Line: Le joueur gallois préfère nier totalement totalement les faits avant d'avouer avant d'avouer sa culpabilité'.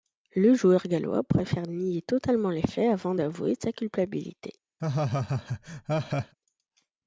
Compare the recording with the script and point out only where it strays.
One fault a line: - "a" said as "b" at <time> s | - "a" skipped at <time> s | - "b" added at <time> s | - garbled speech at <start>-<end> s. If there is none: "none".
- "totalement" skipped at 2.5 s
- "avant d'avouer" skipped at 3.5 s